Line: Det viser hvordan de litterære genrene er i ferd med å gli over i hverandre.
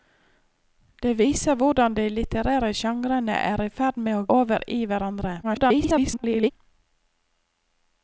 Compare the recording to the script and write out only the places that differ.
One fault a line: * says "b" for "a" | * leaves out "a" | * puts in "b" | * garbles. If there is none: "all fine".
* leaves out "gli"
* garbles